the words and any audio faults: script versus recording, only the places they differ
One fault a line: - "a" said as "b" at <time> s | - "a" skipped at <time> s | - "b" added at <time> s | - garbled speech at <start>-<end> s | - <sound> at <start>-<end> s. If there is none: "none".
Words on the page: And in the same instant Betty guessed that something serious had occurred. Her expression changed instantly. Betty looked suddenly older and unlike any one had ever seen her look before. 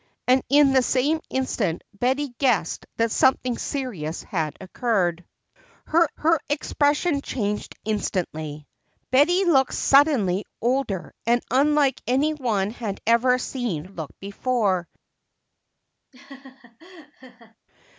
- "her" added at 6.2 s
- "her" skipped at 13.9 s
- laugh at 16.1-17.6 s